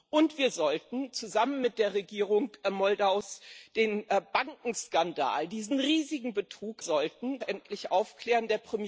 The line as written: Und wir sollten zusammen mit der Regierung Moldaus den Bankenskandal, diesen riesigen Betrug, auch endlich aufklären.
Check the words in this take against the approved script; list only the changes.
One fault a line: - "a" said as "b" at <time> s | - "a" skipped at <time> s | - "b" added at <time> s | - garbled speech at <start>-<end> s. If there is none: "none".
- "auch" said as "sollten" at 6.8 s